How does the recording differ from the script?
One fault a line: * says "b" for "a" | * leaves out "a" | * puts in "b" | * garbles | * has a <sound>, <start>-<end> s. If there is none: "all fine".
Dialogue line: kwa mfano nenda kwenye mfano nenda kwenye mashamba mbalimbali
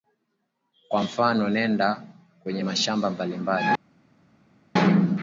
* leaves out "mfano nenda kwenye"